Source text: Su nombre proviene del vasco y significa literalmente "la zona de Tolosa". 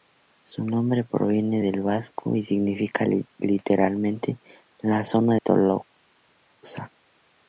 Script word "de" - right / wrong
wrong